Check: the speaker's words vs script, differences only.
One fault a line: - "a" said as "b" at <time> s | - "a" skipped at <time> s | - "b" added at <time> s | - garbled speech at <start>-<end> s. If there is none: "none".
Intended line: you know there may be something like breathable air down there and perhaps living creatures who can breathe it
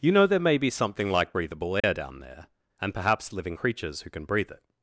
none